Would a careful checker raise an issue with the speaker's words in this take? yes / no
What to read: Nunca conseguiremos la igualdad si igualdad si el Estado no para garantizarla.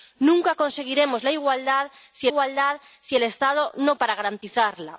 no